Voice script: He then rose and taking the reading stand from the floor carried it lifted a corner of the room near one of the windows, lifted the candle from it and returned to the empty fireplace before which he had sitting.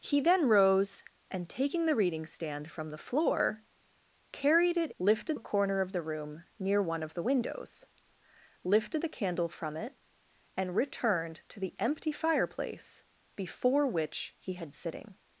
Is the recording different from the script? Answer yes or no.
no